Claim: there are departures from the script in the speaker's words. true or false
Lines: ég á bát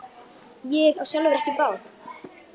true